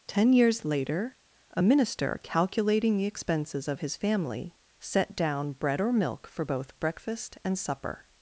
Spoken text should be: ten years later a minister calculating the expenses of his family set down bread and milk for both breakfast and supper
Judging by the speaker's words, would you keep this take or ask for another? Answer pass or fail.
fail